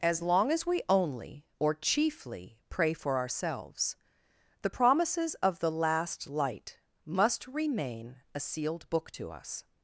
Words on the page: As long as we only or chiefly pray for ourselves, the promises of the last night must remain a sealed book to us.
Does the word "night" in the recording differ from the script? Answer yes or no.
yes